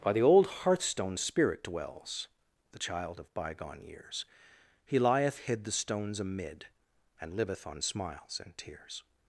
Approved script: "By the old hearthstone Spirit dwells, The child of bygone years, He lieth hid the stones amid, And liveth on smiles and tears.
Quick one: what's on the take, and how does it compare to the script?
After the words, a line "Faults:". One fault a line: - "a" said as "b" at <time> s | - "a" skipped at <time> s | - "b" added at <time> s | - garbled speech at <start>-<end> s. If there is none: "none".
"By the old hearthstone Spirit dwells, The child of bygone years, He lieth hid the stones amid, And liveth on smiles and tears.
Faults:
none